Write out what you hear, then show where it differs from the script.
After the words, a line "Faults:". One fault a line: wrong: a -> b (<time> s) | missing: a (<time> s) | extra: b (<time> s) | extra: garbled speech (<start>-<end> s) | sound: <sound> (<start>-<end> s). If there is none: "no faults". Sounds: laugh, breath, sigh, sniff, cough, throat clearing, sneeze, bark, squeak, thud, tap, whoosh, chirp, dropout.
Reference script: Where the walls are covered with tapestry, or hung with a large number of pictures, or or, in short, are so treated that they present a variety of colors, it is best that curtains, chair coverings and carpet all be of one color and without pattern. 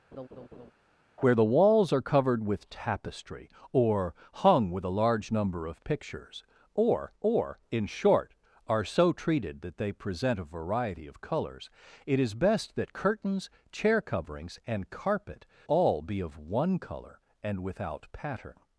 Where the walls are covered with tapestry, or hung with a large number of pictures, or or, in short, are so treated that they present a variety of colors, it is best that curtains, chair coverings and carpet all be of one color and without pattern.
Faults:
sound: laugh (0.1-0.7 s)